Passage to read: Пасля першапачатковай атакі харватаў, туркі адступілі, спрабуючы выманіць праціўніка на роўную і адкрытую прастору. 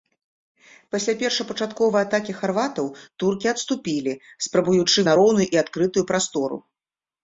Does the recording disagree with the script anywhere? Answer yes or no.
yes